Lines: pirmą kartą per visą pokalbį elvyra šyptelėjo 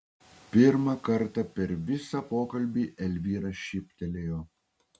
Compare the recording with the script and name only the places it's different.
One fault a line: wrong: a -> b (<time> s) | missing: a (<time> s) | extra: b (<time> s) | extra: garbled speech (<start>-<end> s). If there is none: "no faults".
no faults